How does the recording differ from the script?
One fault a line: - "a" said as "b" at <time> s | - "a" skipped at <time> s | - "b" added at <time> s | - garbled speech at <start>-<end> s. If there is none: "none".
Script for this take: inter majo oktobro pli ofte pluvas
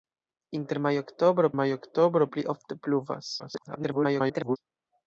- "majo oktobro" added at 1.6 s
- garbled speech at 3.4-4.6 s